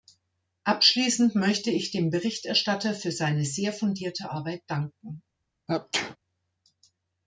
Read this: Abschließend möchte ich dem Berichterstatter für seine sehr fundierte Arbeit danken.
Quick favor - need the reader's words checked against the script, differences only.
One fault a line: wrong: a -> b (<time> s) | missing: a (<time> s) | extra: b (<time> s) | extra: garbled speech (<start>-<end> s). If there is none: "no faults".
no faults